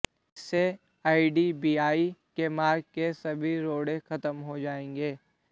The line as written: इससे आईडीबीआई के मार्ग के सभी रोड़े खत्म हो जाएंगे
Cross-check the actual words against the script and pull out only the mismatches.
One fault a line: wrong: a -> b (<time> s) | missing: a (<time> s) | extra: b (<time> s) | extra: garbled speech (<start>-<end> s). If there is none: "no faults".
no faults